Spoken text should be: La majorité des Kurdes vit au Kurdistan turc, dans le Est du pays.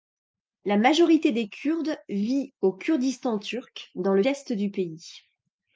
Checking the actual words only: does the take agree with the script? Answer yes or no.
yes